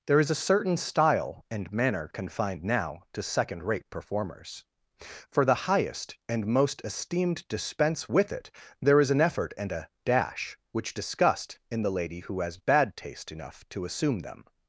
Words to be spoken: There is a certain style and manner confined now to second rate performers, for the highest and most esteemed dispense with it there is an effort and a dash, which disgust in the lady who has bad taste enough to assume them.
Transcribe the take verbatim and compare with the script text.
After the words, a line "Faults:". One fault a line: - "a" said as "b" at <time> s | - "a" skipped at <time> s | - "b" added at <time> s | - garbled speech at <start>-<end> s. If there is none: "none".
There is a certain style and manner confined now to second rate performers, for the highest and most esteemed dispense with it there is an effort and a dash, which disgust in the lady who has bad taste enough to assume them.
Faults:
none